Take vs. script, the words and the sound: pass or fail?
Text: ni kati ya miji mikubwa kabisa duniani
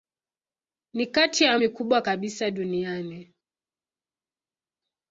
fail